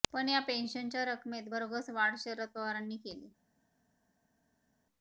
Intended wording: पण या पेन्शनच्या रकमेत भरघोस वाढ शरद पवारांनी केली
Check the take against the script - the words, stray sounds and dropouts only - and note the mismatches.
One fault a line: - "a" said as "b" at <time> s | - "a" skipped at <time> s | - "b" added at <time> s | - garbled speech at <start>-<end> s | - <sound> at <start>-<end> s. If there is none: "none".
none